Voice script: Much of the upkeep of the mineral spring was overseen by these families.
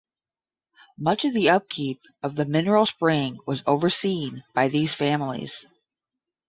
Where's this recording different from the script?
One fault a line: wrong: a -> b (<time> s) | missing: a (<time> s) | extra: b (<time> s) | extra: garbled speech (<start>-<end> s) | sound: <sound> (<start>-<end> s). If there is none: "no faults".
no faults